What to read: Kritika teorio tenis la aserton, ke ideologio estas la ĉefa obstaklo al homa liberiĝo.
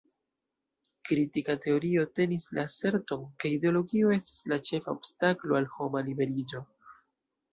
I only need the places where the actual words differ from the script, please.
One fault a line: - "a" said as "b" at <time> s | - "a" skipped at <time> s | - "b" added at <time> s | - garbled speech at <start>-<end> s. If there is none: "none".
none